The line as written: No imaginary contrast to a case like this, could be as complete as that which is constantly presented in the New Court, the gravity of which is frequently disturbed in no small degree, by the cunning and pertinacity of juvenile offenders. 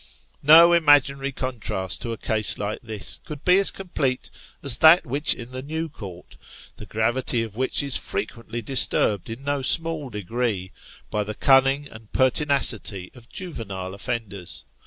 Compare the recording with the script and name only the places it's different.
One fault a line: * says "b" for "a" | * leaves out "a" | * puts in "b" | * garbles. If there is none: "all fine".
* leaves out "is constantly presented"